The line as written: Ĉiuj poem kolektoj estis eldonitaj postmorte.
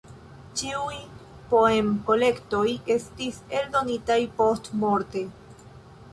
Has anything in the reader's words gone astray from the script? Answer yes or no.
no